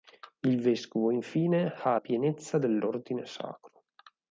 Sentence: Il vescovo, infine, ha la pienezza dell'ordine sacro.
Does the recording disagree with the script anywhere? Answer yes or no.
yes